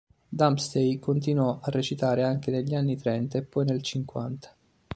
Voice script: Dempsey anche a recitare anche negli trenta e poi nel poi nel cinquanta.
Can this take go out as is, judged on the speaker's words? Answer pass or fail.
fail